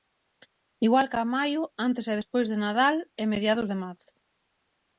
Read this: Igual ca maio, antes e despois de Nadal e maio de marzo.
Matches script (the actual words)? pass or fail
fail